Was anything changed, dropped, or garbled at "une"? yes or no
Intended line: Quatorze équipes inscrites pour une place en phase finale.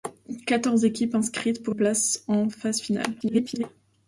yes